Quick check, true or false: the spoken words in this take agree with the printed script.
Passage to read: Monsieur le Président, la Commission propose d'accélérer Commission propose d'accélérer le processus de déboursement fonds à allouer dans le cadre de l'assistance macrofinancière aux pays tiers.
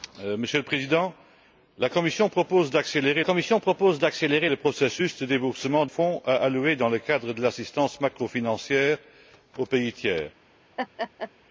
true